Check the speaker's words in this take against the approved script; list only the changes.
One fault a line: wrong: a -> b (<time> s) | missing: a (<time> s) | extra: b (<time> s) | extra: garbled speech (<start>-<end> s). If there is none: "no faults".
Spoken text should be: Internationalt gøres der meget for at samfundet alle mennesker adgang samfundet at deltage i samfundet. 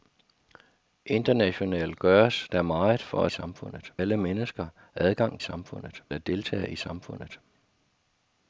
no faults